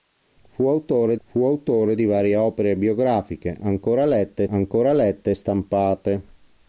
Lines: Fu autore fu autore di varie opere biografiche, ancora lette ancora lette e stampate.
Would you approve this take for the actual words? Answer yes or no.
yes